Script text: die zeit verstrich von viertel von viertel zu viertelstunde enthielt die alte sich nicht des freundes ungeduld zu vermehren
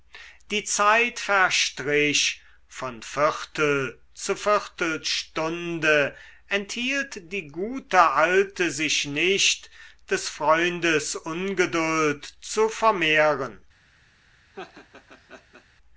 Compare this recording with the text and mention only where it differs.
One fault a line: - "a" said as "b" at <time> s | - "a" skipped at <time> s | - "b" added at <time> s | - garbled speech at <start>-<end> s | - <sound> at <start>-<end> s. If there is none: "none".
- "von viertel" skipped at 4.0 s
- "gute" added at 7.5 s
- laugh at 14.5-15.7 s